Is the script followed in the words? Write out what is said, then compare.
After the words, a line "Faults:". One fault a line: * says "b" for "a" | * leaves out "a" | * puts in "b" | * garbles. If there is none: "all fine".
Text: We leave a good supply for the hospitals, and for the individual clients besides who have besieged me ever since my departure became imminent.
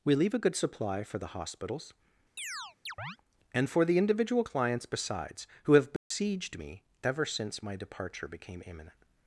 We leave a good supply for the hospitals, and for the individual clients besides who have besieged me ever since my departure became imminent.
Faults:
all fine